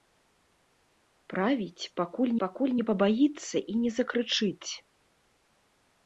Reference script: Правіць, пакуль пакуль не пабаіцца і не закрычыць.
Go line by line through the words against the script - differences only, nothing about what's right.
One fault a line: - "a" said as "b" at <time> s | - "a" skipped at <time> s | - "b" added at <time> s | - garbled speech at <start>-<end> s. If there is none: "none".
none